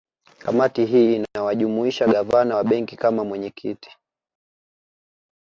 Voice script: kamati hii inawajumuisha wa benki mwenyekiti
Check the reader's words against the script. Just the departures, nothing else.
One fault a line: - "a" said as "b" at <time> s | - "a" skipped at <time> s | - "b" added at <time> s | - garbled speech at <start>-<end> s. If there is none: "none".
- "gavana" added at 2.0 s
- "kama" added at 3.0 s